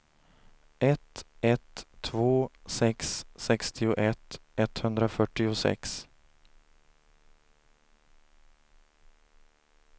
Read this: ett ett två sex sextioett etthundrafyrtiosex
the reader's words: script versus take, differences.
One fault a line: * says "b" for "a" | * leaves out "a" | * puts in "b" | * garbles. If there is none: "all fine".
all fine